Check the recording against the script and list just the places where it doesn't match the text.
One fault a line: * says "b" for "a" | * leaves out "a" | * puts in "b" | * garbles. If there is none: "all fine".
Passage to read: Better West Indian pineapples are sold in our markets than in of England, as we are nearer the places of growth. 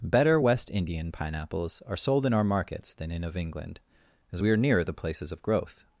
all fine